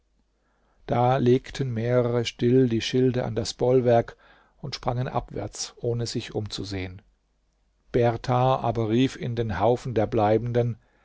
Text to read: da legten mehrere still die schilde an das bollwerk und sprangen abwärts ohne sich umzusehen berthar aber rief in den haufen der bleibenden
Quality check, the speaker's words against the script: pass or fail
pass